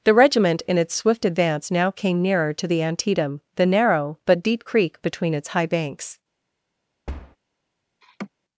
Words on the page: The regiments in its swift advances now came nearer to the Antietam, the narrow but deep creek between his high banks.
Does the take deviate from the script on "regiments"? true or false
true